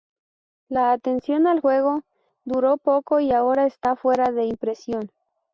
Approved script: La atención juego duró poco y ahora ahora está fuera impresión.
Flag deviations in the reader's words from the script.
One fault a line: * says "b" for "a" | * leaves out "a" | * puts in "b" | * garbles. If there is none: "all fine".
* puts in "al"
* leaves out "ahora"
* puts in "de"